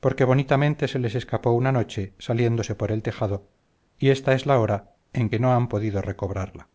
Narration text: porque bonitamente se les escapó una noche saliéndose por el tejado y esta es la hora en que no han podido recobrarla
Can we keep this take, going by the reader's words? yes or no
yes